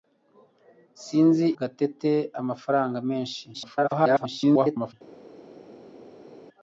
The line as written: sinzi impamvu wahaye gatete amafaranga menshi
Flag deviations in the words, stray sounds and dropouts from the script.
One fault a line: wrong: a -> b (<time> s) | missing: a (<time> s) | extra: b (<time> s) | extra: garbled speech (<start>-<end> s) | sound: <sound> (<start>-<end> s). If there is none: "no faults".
missing: impamvu wahaye (1.4 s)
extra: garbled speech (3.5-4.9 s)